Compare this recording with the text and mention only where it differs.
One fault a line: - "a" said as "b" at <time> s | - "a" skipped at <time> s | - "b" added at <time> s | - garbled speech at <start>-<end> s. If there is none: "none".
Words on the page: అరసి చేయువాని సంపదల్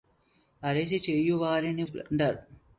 none